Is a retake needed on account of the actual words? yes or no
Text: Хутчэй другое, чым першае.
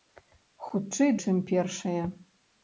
yes